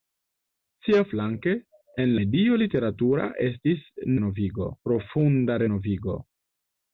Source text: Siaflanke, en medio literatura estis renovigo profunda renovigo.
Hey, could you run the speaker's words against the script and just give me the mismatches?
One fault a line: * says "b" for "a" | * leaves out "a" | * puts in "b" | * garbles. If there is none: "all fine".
all fine